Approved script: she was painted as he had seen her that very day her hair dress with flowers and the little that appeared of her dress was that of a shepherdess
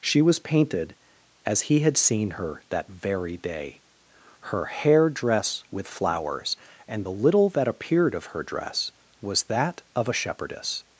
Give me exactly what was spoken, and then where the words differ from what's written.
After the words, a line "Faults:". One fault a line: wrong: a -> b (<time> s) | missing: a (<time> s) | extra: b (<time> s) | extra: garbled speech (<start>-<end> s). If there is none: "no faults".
she was painted as he had seen her that very day her hair dress with flowers and the little that appeared of her dress was that of a shepherdess
Faults:
no faults